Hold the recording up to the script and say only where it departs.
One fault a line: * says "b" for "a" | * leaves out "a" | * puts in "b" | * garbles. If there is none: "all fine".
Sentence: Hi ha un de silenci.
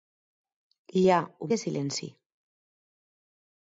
all fine